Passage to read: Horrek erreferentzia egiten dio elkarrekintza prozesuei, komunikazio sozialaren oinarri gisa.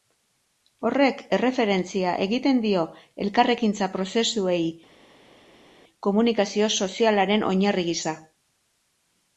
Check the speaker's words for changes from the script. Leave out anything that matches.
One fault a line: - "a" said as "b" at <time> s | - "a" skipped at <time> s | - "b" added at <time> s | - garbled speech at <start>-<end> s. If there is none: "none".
none